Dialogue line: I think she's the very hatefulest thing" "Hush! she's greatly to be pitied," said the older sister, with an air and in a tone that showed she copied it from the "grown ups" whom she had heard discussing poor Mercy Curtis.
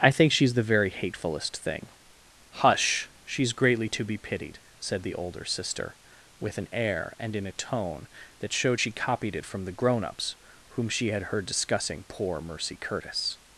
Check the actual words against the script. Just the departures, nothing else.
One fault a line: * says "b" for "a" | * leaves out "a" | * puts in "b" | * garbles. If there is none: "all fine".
all fine